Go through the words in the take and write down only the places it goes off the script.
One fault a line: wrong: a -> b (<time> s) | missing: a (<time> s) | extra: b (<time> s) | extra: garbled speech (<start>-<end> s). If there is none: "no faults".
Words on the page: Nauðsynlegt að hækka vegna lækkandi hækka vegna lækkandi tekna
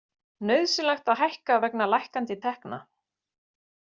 missing: hækka vegna lækkandi (2.4 s)